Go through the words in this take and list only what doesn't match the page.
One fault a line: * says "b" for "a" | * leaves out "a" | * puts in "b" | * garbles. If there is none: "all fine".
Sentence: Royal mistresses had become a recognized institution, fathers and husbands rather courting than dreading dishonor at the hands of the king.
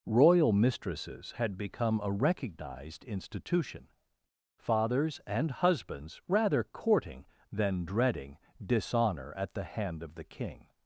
* says "hand" for "hands"